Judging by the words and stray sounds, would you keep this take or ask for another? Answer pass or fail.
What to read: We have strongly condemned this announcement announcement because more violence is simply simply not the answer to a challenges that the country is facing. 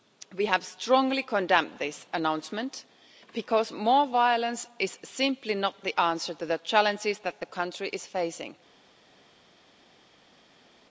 fail